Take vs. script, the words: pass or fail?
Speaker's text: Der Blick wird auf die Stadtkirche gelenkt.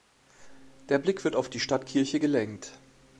pass